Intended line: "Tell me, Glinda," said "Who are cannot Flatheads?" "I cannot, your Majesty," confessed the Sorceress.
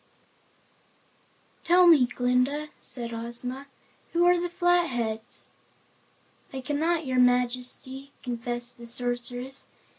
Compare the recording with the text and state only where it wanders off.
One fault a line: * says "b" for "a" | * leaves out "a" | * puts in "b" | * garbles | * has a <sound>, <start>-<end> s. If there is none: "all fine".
* puts in "Ozma"
* says "the" for "cannot"